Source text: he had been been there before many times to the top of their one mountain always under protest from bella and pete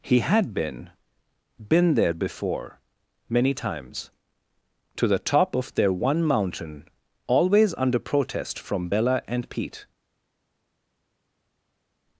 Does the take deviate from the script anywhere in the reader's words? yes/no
no